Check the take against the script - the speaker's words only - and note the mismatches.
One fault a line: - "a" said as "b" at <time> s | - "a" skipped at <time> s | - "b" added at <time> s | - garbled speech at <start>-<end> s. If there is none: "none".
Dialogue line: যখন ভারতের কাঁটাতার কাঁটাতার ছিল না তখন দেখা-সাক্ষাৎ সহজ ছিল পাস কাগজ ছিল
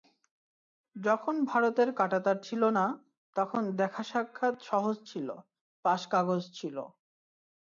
- "কাঁটাতার" skipped at 2.4 s